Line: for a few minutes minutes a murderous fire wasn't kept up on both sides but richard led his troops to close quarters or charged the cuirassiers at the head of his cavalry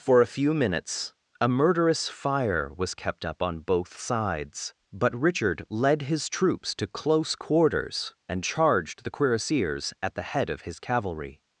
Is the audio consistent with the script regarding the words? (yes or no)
no